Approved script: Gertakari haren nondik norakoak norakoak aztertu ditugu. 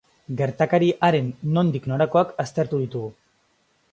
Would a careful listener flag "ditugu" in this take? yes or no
no